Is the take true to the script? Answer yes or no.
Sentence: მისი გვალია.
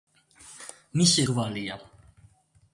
yes